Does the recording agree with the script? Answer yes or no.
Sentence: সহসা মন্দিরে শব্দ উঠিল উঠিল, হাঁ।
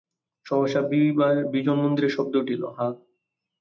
no